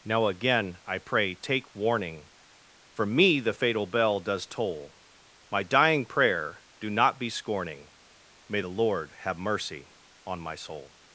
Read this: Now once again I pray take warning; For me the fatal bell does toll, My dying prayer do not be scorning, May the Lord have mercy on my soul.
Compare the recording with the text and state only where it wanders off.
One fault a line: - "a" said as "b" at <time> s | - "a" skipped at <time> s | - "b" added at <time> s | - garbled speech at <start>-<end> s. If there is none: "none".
- "once" skipped at 0.3 s